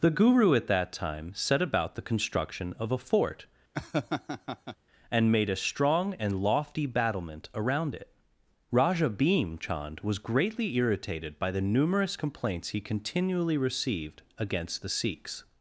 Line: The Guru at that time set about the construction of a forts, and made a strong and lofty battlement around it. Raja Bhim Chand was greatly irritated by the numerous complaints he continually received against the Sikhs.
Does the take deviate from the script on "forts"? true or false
true